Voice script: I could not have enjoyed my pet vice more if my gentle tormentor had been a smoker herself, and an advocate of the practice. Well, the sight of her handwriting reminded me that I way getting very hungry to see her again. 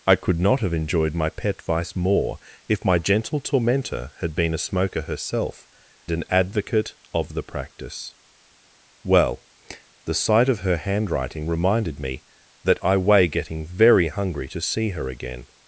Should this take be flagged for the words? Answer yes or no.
yes